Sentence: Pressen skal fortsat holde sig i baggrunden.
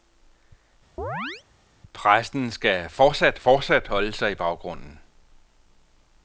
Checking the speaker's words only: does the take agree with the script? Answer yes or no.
no